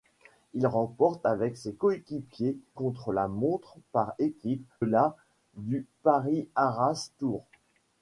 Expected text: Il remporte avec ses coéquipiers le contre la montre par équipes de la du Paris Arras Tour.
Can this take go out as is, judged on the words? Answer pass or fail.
fail